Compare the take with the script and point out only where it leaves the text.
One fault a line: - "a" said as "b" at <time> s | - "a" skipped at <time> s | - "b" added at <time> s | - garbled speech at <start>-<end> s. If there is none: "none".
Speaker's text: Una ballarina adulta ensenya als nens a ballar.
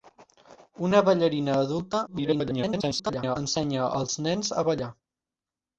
- garbled speech at 2.1-3.4 s